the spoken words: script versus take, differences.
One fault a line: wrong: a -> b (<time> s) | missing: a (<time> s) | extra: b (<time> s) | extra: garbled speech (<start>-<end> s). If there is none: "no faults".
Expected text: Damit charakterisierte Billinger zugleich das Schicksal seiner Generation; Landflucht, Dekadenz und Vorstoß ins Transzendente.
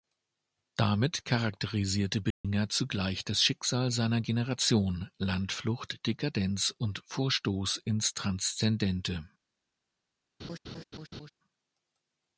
no faults